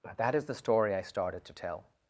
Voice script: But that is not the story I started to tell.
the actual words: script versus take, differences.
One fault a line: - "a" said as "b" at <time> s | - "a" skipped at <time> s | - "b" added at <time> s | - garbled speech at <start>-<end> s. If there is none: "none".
- "not" skipped at 0.4 s